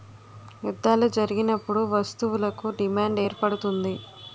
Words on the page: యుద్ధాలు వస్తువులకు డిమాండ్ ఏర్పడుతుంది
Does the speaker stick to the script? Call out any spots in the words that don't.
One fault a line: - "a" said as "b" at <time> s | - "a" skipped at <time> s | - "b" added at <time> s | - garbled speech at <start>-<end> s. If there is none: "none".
- "జరిగినప్పుడు" added at 1.2 s